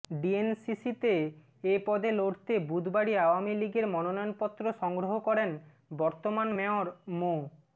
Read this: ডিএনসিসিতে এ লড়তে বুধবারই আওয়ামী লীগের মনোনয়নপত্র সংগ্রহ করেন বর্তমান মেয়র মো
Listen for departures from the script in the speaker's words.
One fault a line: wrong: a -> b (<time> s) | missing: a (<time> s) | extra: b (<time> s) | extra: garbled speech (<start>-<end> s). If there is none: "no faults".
extra: পদে (1.9 s)